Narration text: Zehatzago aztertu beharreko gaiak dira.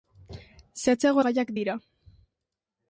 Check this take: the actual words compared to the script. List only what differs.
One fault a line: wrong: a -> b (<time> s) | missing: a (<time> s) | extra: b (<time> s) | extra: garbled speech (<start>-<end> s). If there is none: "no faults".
missing: aztertu beharreko (1.2 s)